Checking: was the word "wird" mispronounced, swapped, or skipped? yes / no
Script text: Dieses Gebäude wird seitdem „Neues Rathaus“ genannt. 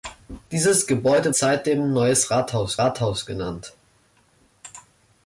yes